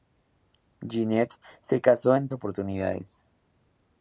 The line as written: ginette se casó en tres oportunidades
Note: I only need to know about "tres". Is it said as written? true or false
false